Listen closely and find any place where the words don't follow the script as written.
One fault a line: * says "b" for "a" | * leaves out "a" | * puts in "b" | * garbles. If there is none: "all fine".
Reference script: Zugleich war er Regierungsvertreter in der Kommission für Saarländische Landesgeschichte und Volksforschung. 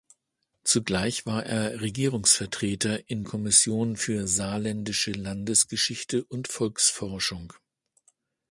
* leaves out "der"